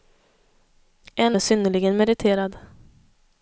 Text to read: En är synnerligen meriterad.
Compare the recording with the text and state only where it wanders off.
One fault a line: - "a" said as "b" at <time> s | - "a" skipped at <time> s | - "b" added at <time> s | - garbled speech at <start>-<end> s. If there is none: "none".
none